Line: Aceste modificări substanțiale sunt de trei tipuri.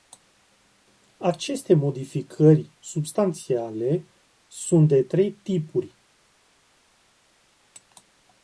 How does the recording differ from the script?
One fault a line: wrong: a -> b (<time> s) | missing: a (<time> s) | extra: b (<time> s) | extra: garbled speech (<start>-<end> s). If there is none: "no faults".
no faults